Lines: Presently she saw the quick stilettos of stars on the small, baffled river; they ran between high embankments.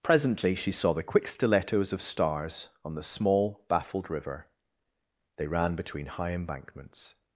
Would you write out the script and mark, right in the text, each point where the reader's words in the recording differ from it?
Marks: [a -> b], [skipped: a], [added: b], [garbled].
Presently she saw the quick stilettos of stars on the small, baffled river; they ran between high embankments.